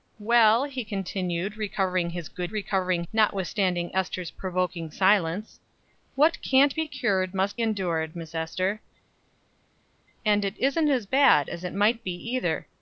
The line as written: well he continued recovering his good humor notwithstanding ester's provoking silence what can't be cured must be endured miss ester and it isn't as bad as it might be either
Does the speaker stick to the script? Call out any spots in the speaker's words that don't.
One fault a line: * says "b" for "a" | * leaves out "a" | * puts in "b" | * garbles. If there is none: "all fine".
* says "recovering" for "humor"
* leaves out "be"